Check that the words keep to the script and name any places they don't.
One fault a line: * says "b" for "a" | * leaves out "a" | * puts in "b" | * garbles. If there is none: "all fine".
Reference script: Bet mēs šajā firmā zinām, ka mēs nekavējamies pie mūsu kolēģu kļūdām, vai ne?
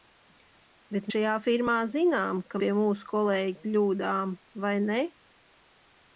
* leaves out "mēs"
* leaves out "mēs nekavējamies"